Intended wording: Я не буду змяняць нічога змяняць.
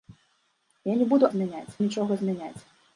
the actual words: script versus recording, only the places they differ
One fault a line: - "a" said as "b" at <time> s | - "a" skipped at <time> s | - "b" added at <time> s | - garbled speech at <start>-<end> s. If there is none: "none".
none